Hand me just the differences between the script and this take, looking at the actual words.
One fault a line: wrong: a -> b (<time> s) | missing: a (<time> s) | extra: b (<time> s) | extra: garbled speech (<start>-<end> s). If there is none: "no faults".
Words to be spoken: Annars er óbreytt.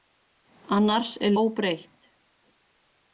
no faults